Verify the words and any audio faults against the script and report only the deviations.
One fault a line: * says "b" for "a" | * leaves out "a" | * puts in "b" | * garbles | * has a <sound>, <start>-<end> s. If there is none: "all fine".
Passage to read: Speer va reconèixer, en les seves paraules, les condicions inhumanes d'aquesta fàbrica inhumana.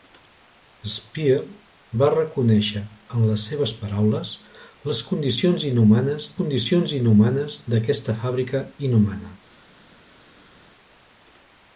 * puts in "condicions inhumanes"